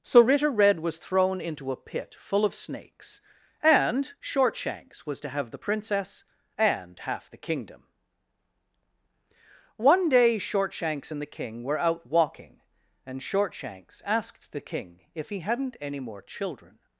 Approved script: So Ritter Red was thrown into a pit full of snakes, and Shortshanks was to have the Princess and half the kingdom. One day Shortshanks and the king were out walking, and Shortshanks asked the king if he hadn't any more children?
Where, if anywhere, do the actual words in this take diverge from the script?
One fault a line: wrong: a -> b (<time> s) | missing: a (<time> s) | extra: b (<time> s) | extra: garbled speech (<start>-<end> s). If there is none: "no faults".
no faults